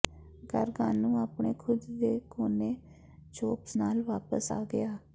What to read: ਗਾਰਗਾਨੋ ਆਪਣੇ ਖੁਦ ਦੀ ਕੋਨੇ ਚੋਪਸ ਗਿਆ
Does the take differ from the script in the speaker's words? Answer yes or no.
yes